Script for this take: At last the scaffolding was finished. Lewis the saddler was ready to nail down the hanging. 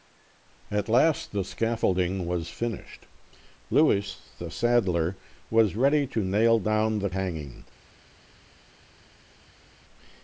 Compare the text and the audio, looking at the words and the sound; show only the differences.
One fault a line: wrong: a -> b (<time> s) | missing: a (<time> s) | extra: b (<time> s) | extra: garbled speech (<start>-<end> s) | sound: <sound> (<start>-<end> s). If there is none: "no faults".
no faults